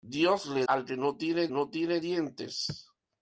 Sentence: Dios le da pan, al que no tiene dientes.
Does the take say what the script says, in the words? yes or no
no